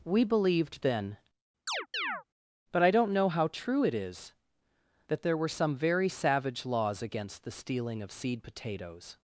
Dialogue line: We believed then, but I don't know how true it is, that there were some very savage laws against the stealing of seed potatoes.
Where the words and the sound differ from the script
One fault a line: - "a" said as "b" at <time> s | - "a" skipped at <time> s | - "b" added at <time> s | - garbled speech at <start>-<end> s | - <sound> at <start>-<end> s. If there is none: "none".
- chirp at 1.7-2.2 s